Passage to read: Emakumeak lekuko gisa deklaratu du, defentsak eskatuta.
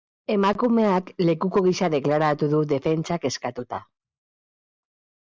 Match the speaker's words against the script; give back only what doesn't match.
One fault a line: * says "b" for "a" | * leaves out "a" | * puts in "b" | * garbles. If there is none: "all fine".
all fine